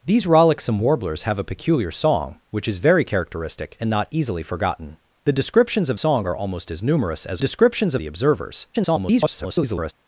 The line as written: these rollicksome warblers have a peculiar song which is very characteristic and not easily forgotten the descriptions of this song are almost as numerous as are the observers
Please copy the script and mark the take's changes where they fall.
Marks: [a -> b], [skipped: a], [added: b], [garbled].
these rollicksome warblers have a peculiar song which is very characteristic and not easily forgotten the descriptions of [skipped: this] song are almost as numerous as [are -> descriptions] the observers [garbled]